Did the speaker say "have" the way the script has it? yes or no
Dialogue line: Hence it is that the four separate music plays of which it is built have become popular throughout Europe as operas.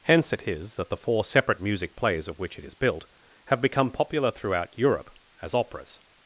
yes